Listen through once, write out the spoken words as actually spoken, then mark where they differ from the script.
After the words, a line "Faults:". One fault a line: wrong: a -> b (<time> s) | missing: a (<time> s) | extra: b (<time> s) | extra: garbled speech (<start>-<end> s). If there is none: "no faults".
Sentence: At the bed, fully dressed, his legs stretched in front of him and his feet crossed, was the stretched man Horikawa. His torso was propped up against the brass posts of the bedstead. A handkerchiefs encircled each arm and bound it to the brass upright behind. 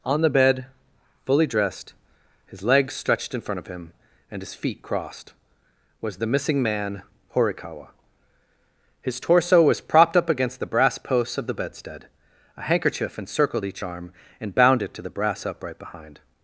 On the bed, fully dressed, his legs stretched in front of him and his feet crossed, was the missing man Horikawa. His torso was propped up against the brass posts of the bedstead. A handkerchief encircled each arm and bound it to the brass upright behind.
Faults:
wrong: At -> On (0.0 s)
wrong: stretched -> missing (6.3 s)
wrong: handkerchiefs -> handkerchief (12.6 s)